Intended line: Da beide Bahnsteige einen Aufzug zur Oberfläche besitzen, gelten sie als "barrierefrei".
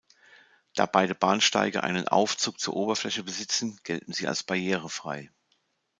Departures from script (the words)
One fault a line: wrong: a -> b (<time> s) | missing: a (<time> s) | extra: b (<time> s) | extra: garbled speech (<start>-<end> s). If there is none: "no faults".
no faults